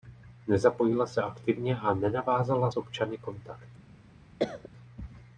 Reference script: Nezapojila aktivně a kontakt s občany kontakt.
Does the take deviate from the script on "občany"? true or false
false